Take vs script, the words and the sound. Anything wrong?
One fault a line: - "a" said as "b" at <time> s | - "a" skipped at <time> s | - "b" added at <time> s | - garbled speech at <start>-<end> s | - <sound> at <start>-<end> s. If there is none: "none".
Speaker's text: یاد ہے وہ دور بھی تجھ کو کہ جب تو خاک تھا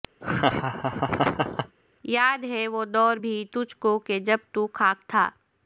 - laugh at 0.2-1.8 s